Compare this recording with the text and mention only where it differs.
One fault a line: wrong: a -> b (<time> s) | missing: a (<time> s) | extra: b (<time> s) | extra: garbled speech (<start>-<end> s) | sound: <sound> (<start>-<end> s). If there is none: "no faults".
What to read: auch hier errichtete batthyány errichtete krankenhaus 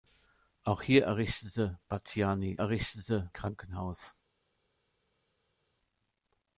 no faults